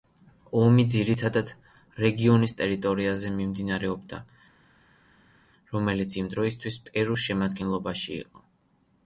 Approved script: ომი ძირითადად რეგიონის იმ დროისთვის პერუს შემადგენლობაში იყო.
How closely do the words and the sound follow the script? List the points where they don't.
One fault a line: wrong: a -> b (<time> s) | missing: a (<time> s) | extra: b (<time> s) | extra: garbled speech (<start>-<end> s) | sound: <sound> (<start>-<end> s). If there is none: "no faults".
extra: ტერიტორიაზე მიმდინარეობდა რომელიც (2.6 s)